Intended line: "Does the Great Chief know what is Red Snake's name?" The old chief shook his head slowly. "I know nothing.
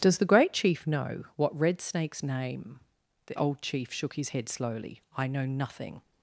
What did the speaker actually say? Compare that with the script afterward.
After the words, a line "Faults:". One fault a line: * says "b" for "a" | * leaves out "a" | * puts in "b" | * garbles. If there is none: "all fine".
"Does the Great Chief know what Red Snake's name?" The old chief shook his head slowly. "I know nothing.
Faults:
* leaves out "is"